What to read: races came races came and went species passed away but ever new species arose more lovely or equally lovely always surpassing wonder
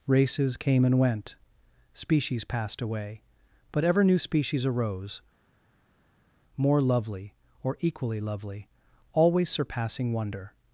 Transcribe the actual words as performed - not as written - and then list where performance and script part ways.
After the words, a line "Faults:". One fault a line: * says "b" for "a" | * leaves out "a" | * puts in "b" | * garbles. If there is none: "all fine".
races came and went species passed away but ever new species arose more lovely or equally lovely always surpassing wonder
Faults:
* leaves out "races came"